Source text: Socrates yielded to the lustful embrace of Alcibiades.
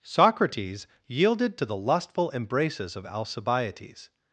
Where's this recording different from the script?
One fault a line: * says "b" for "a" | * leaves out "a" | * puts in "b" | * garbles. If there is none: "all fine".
* says "embraces" for "embrace"